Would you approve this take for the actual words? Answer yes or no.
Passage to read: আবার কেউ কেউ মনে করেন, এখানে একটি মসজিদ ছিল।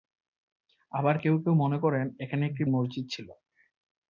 yes